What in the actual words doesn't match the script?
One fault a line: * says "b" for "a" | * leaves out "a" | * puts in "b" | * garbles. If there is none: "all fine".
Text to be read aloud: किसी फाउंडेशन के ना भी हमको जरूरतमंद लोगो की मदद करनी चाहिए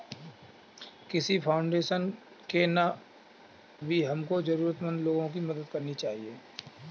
all fine